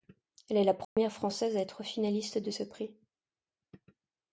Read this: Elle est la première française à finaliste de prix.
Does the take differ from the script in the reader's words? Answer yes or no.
yes